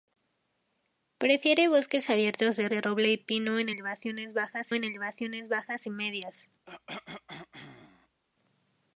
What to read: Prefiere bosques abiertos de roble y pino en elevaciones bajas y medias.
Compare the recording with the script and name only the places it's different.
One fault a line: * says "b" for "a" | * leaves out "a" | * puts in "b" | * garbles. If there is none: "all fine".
* puts in "de"
* puts in "en elevaciones bajas"